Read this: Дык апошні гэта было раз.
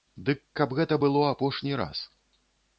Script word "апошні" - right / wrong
wrong